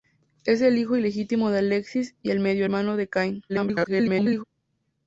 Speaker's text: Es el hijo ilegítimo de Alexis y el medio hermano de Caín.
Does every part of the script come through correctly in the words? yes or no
no